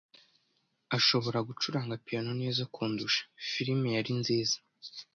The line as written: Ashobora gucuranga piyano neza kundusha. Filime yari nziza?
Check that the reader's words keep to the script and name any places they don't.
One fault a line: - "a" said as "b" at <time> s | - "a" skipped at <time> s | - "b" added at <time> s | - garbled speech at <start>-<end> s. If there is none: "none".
none